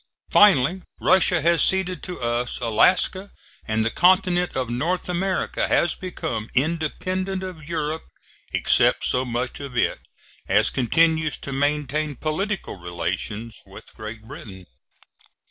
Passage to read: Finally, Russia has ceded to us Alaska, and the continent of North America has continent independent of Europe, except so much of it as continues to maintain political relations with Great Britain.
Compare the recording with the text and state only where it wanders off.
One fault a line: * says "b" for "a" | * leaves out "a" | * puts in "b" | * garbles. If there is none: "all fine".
* says "become" for "continent"